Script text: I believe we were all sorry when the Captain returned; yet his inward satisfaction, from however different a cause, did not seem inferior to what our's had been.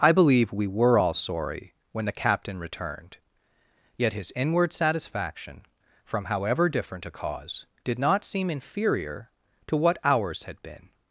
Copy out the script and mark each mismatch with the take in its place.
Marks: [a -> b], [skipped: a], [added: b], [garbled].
I believe we were all sorry when the Captain returned; yet his inward satisfaction, from however different a cause, did not seem inferior to what our's had been.